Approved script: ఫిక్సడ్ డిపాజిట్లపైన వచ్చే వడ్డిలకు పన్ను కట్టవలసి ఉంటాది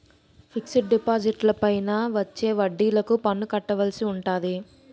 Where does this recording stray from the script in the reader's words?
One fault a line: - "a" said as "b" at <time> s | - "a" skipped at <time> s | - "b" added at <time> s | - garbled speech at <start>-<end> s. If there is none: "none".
none